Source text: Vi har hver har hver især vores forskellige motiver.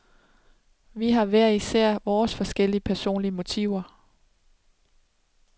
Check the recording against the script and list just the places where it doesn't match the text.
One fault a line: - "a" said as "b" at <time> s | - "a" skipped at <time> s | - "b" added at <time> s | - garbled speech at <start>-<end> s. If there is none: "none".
- "har hver" skipped at 1.5 s
- "personlige" added at 2.8 s